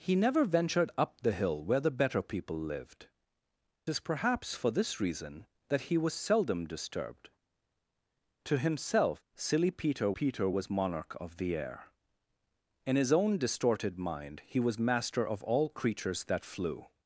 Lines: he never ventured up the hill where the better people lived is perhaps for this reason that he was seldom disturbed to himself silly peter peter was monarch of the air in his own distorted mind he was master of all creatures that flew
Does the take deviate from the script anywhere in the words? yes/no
no